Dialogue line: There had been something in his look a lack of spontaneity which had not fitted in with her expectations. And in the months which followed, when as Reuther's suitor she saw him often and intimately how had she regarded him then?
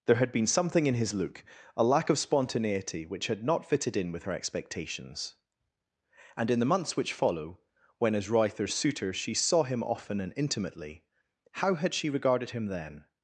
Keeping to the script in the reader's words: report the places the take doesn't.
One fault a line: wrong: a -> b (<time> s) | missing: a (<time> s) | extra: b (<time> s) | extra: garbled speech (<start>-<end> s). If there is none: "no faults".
wrong: followed -> follow (7.1 s)